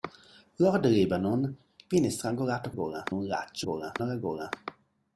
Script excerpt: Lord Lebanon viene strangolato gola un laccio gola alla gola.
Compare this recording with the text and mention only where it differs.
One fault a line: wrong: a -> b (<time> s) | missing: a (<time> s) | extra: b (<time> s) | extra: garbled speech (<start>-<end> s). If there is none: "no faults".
no faults